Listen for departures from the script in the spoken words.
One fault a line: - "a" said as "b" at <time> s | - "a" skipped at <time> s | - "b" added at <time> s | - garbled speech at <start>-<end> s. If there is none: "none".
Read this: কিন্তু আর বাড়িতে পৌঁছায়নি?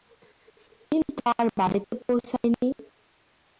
none